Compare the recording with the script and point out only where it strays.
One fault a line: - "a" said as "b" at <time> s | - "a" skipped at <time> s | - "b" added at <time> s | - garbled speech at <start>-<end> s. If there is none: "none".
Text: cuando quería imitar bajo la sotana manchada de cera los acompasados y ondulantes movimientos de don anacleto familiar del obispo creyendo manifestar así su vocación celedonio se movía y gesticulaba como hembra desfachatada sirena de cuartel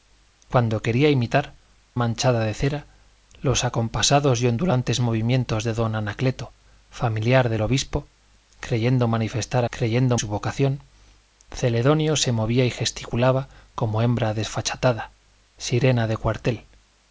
- "bajo la sotana" skipped at 1.6 s
- "así" said as "creyendo" at 9.7 s